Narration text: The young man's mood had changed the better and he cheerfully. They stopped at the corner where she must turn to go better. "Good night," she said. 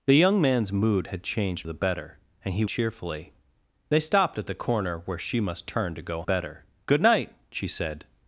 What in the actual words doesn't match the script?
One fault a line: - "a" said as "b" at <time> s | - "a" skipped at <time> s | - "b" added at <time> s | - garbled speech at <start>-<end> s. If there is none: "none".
none